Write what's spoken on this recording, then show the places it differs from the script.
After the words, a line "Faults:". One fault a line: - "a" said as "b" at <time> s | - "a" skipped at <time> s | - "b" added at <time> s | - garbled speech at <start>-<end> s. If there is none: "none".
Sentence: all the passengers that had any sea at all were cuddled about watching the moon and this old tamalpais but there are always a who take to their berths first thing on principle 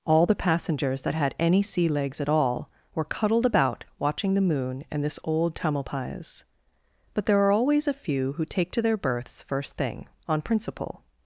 all the passengers that had any sea legs at all were cuddled about watching the moon and this old tamalpais but there are always a few who take to their berths first thing on principle
Faults:
- "legs" added at 1.9 s
- "few" added at 7.9 s